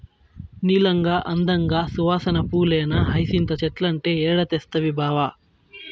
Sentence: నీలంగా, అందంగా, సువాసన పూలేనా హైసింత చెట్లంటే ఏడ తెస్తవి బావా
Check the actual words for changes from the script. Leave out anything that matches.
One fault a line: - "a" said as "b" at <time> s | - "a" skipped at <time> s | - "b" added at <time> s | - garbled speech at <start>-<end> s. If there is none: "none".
none